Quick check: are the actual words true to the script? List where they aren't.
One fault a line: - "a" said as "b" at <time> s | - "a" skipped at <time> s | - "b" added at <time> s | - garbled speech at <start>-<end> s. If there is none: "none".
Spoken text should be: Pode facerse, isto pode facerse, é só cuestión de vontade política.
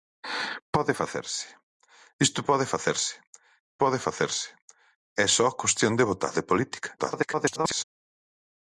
- "pode facerse" added at 3.8 s
- garbled speech at 7.0-7.8 s